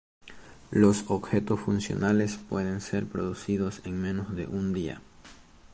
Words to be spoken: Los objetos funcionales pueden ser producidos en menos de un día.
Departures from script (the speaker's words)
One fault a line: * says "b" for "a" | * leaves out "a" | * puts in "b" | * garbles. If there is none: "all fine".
all fine